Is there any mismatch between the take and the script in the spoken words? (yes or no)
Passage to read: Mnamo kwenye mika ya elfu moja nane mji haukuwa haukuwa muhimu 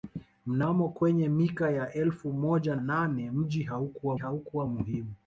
no